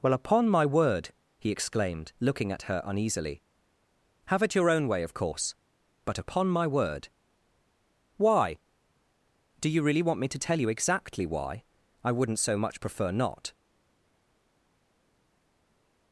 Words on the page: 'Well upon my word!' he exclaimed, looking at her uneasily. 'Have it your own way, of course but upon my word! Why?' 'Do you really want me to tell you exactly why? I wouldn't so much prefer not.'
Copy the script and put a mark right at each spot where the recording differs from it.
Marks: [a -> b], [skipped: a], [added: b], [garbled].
'Well upon my word!' he exclaimed, looking at her uneasily. 'Have it your own way, of course but upon my word! Why?' 'Do you really want me to tell you exactly why? I wouldn't so much prefer not.'